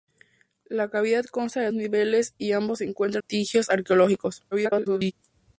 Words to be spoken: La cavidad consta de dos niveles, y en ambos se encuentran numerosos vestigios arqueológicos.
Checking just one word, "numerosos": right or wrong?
wrong